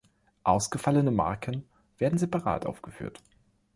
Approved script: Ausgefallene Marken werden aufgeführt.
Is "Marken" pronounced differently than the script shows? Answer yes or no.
no